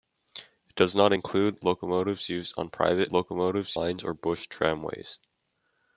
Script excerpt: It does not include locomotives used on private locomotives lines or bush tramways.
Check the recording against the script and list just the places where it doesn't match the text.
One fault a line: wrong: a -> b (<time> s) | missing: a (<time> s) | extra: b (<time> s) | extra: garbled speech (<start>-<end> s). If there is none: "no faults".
no faults